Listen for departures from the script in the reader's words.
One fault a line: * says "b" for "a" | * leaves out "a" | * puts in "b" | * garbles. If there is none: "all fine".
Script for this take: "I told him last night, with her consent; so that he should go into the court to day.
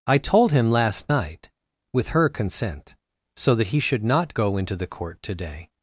* puts in "not"